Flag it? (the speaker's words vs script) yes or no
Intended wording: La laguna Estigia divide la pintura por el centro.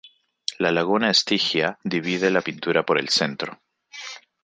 no